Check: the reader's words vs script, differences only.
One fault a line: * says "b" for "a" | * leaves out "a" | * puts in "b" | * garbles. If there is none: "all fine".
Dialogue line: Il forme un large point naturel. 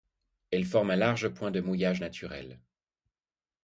* says "Elle" for "Il"
* puts in "de mouillage"